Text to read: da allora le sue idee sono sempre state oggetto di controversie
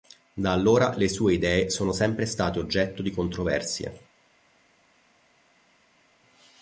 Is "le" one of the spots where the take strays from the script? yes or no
no